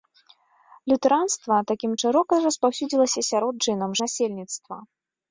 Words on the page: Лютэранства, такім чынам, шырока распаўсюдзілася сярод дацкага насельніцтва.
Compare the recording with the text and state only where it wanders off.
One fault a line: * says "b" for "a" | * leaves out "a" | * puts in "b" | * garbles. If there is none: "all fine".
* leaves out "чынам"
* says "чынам" for "дацкага"